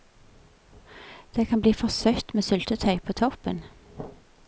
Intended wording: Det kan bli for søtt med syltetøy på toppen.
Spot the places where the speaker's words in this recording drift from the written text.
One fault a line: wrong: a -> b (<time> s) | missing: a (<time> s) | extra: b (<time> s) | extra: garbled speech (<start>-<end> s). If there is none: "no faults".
no faults